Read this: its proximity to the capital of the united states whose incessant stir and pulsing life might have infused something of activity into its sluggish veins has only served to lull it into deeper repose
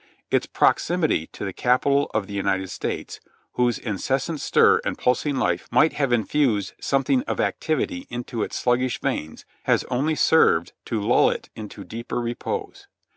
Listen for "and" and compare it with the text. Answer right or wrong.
right